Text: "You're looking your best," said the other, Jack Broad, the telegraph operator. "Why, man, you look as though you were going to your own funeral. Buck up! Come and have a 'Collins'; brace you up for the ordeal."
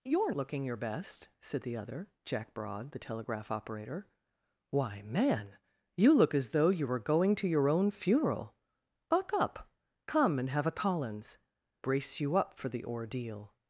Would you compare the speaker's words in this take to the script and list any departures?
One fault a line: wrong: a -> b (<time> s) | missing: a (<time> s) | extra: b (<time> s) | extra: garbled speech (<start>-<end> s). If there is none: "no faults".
no faults